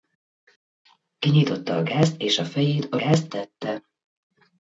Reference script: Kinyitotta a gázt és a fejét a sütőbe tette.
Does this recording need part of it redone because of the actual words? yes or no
yes